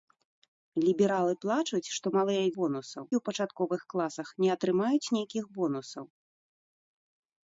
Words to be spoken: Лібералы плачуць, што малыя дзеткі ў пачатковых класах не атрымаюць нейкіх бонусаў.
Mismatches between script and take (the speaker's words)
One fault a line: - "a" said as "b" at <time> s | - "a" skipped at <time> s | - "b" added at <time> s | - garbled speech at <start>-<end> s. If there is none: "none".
- "дзеткі" said as "бонусаў" at 2.6 s